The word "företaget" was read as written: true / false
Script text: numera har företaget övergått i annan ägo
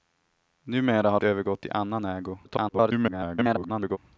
false